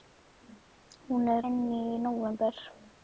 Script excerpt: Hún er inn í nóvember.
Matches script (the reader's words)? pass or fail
pass